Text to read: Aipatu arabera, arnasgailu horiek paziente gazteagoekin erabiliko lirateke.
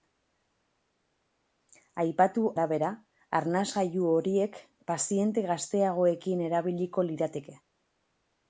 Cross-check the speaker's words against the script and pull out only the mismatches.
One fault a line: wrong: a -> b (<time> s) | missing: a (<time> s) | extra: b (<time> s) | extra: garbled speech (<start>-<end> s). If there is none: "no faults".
no faults